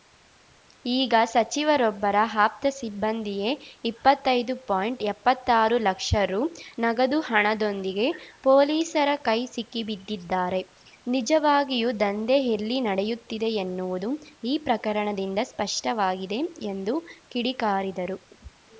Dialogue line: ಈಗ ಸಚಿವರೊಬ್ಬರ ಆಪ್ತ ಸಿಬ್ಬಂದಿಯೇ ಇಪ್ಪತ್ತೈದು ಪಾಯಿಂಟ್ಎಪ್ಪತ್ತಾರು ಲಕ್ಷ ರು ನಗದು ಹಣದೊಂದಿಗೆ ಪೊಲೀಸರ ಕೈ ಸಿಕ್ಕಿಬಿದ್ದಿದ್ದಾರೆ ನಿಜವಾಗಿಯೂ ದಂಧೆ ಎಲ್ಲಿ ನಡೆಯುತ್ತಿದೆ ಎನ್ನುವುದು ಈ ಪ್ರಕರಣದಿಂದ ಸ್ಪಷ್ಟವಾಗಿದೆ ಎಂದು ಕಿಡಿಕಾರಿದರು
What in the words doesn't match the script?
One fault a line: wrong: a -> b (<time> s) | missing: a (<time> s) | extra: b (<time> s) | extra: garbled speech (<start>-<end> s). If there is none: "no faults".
no faults